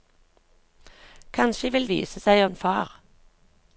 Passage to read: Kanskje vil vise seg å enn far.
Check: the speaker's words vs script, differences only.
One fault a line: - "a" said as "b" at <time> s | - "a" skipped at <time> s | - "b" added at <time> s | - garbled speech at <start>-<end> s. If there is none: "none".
none